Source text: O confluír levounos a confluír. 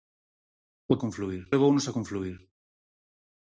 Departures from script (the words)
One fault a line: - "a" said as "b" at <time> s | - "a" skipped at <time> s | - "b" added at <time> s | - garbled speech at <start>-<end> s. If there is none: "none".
none